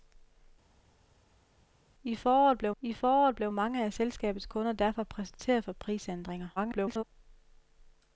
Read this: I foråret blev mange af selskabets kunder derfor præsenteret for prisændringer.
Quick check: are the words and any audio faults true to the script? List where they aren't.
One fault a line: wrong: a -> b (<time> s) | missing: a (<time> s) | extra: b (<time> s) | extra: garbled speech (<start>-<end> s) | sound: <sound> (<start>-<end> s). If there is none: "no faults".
extra: I foråret blev (2.8 s)
extra: garbled speech (6.6-7.0 s)